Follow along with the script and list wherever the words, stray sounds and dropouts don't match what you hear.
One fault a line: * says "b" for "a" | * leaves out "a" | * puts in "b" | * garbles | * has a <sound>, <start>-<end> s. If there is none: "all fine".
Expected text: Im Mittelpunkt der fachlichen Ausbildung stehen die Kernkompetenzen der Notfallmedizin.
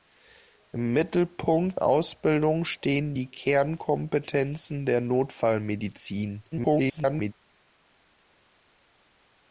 * leaves out "der fachlichen"
* garbles